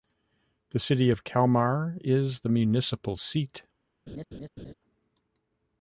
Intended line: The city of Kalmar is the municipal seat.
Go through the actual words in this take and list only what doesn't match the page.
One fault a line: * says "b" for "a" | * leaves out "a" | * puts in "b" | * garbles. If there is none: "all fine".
all fine